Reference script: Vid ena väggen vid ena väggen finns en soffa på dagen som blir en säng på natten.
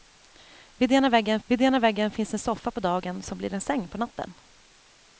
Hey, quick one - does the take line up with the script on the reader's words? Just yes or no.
yes